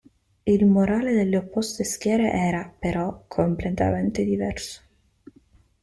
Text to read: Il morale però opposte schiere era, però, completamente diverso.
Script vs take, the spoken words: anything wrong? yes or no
yes